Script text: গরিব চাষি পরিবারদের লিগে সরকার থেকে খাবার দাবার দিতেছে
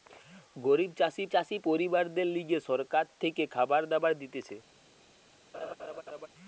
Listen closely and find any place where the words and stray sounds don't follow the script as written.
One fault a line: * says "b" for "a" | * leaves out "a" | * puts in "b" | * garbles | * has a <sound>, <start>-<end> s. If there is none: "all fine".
* puts in "চাষি"
* has a laugh, 5.5-6.3 s